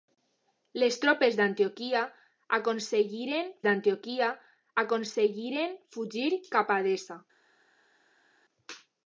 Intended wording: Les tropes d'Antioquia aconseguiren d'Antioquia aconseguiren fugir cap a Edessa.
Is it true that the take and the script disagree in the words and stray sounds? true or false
false